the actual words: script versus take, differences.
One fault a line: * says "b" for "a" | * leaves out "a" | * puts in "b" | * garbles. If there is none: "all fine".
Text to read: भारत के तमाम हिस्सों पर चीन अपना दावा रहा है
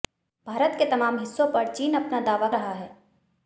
all fine